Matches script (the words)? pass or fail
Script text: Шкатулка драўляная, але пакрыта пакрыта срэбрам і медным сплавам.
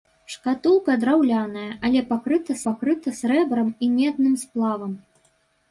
pass